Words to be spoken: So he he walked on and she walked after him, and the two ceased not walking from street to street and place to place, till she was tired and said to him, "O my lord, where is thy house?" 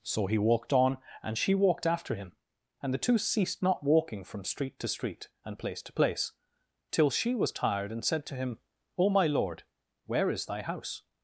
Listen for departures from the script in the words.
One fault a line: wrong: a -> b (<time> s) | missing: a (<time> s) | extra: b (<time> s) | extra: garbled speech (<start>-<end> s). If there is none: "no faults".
missing: he (0.4 s)